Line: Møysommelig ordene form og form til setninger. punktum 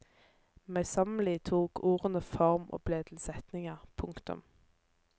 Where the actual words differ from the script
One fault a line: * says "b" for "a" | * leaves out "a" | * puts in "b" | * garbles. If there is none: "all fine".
* puts in "tok"
* says "ble" for "form"